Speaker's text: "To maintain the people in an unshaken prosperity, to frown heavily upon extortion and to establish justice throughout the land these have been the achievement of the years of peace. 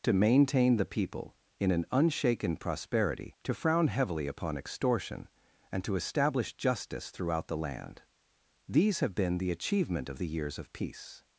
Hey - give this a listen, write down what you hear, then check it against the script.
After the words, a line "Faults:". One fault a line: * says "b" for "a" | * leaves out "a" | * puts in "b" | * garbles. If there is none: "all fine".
"To maintain the people in an unshaken prosperity, to frown heavily upon extortion and to establish justice throughout the land these have been the achievement of the years of peace.
Faults:
all fine